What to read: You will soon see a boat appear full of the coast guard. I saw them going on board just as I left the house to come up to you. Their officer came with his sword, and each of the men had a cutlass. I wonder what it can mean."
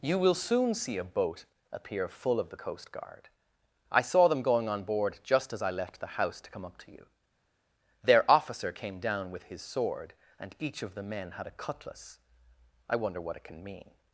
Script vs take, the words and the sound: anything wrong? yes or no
yes